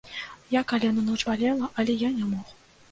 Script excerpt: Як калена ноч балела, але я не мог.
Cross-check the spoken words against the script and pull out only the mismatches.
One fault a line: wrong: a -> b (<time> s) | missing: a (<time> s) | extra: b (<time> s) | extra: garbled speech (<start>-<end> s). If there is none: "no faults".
no faults